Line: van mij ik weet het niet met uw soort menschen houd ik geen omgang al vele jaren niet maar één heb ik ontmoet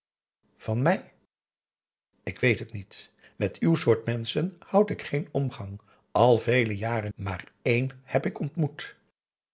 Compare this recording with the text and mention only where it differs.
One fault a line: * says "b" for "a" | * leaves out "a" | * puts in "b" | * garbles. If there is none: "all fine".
* leaves out "niet"